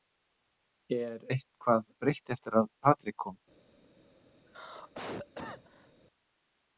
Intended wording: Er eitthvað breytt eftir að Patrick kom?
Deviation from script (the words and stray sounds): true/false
true